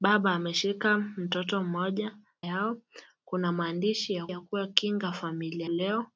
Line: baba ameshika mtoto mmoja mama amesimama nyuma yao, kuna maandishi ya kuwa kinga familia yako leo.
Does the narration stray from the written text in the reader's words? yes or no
yes